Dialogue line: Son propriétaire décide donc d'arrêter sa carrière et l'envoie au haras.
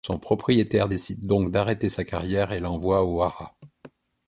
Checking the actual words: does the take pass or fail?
pass